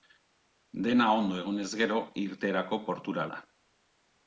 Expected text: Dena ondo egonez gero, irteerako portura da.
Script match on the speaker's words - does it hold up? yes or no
yes